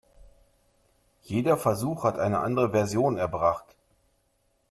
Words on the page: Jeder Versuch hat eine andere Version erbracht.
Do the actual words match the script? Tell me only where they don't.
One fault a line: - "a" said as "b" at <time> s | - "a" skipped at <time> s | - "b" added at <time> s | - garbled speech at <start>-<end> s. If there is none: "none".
none